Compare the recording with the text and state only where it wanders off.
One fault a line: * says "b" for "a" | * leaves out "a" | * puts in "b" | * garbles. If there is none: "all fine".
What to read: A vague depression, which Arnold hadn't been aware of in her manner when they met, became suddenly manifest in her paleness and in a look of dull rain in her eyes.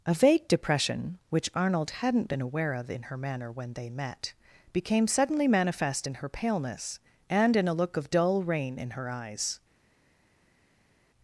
all fine